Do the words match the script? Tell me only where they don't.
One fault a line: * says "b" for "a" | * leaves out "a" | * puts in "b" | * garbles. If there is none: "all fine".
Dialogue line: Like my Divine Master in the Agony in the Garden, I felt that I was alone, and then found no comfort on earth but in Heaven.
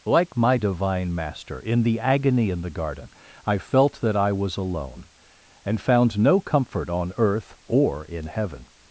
* leaves out "then"
* says "or" for "but"